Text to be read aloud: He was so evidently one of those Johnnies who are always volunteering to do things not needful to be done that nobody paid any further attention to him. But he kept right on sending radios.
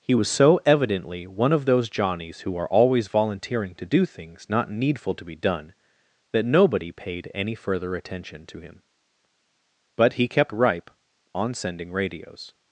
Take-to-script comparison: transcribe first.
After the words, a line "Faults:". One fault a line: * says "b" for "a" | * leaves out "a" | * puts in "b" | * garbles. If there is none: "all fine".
He was so evidently one of those Johnnies who are always volunteering to do things not needful to be done that nobody paid any further attention to him. But he kept ripe on sending radios.
Faults:
* says "ripe" for "right"